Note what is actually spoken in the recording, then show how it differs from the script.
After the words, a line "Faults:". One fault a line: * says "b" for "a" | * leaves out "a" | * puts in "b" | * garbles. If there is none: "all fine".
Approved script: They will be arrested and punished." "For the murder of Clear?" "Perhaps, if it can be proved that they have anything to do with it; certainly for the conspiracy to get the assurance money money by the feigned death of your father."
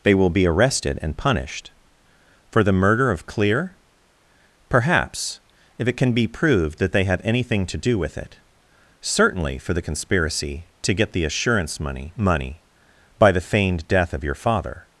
They will be arrested and punished." "For the murder of Clear?" "Perhaps, if it can be proved that they have anything to do with it; certainly for the conspiracy to get the assurance money money by the feigned death of your father."
Faults:
all fine